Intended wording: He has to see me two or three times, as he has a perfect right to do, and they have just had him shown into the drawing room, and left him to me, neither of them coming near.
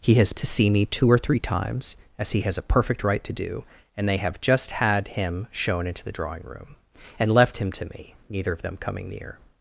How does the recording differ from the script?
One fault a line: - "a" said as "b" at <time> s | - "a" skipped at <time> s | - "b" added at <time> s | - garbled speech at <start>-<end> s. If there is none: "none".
none